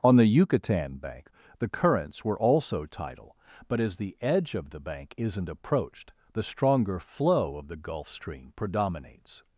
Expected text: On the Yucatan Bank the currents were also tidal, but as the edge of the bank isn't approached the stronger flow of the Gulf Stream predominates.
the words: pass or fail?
pass